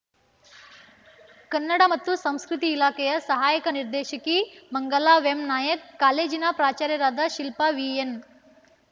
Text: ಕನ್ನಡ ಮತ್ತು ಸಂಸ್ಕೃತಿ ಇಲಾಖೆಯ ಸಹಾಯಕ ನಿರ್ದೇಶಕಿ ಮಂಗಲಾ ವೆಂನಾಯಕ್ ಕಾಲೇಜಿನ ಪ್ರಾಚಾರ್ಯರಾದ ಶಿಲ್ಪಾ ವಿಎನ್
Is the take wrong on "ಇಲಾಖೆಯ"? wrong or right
right